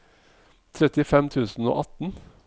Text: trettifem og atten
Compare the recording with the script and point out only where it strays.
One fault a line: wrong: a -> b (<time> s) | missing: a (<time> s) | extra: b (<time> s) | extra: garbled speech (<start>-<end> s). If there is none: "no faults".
extra: tusen (1.3 s)